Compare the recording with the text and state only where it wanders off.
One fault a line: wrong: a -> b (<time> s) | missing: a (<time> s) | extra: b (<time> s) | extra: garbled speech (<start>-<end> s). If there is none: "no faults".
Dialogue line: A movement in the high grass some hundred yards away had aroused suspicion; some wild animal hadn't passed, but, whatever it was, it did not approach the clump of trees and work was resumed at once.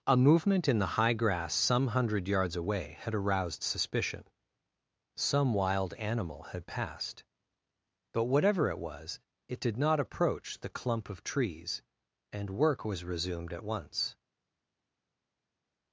wrong: hadn't -> had (6.5 s)